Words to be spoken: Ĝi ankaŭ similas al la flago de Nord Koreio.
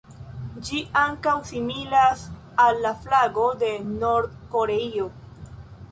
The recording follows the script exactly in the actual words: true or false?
true